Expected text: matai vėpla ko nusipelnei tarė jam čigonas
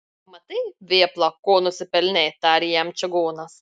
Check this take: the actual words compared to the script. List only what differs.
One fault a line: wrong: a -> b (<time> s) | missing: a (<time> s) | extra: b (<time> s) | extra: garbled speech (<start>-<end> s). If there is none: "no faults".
no faults